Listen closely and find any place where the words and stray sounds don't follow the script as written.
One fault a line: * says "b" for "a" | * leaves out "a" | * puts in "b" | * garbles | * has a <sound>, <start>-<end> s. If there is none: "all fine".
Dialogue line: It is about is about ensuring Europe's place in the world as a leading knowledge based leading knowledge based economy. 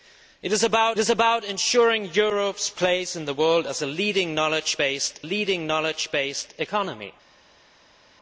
all fine